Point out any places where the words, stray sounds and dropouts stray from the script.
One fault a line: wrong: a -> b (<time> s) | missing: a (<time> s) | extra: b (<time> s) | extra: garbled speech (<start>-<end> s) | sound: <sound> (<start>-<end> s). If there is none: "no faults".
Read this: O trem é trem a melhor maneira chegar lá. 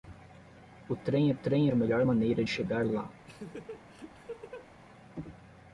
sound: laugh (3.3-4.7 s)